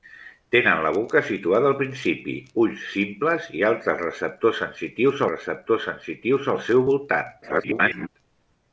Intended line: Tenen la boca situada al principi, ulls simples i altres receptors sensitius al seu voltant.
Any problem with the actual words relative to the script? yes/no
yes